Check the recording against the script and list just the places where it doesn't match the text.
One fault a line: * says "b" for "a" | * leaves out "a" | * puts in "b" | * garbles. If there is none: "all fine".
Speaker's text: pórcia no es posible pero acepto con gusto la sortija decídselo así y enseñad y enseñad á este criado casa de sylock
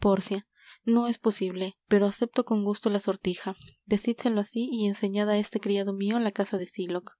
* leaves out "y enseñad"
* puts in "mio la"